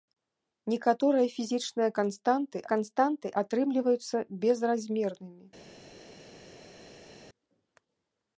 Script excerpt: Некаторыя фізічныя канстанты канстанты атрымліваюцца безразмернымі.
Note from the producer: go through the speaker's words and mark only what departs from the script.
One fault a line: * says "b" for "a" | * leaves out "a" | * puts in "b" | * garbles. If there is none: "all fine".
all fine